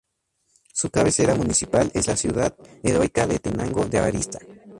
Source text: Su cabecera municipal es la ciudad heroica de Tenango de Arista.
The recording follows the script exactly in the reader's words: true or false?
true